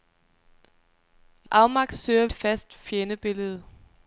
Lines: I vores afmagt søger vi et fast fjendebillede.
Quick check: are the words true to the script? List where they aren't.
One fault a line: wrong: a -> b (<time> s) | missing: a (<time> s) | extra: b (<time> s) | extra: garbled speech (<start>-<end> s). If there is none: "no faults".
missing: vores (1.5 s)
missing: vi (2.3 s)